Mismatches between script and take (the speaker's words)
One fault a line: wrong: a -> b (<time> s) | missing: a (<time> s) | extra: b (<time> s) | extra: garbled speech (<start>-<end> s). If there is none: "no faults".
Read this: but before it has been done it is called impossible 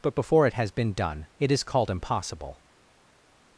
no faults